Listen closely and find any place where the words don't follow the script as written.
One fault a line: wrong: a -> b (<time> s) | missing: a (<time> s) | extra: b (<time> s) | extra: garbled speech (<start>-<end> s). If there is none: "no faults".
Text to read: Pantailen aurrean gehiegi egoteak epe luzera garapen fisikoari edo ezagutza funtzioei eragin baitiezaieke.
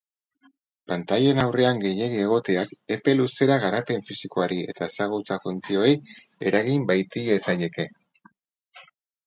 wrong: edo -> eta (4.7 s)